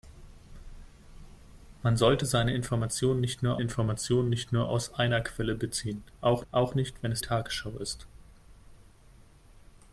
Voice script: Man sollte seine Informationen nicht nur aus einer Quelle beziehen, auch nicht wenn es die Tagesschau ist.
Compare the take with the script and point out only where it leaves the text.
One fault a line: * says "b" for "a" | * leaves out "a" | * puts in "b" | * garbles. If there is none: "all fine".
* puts in "Informationen nicht nur"
* puts in "auch"
* leaves out "die"